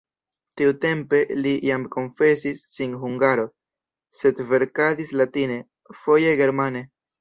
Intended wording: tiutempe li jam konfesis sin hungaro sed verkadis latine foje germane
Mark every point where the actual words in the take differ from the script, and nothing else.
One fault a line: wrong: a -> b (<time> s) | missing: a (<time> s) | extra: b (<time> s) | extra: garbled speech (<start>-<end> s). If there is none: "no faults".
no faults